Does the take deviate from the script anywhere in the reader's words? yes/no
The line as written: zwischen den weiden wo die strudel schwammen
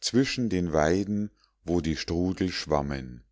no